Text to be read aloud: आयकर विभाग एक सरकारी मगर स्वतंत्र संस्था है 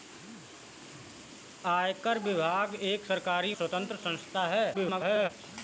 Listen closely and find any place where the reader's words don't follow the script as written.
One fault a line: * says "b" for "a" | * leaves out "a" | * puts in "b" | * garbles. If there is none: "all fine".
* leaves out "मगर"
* garbles